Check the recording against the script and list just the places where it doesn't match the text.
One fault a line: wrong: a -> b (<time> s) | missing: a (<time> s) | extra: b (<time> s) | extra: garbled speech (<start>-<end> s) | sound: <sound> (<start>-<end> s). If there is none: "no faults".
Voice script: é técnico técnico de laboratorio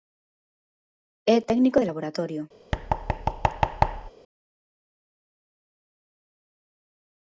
missing: técnico (1.8 s)
sound: thud (2.7-4.1 s)